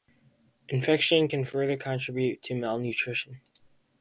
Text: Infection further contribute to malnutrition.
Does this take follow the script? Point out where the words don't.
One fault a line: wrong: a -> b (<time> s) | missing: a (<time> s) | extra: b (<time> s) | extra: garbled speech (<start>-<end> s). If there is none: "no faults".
extra: can (1.2 s)